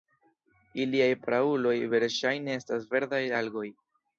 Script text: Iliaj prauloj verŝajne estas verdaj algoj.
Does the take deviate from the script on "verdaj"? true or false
false